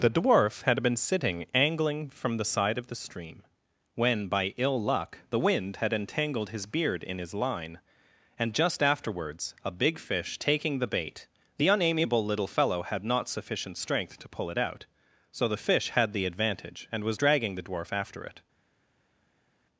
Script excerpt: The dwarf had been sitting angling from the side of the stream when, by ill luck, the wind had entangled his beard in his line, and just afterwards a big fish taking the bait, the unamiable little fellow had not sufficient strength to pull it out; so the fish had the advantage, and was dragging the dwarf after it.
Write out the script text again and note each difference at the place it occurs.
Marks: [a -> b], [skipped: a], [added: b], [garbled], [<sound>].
The dwarf had been sitting angling from the side of the stream when, by ill luck, the wind had entangled his beard in his line, and just afterwards a big fish taking the bait, the unamiable little fellow had not sufficient strength to pull it out; so the fish had the advantage, and was dragging the dwarf after it.